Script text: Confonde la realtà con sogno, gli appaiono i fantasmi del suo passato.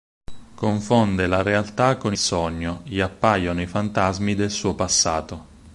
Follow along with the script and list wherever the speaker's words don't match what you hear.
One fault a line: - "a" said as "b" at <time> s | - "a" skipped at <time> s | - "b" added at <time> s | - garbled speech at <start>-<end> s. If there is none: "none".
none